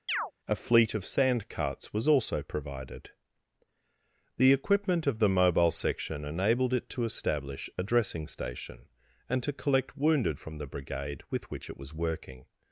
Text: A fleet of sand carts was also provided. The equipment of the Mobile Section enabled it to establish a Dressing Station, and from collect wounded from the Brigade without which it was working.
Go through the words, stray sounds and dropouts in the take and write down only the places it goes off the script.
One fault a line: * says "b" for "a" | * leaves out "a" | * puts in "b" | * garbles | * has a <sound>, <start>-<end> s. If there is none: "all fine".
* has a chirp, 0.1-0.3 s
* says "to" for "from"
* says "with" for "without"